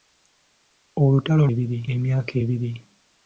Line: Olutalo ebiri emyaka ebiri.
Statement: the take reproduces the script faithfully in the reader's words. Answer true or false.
true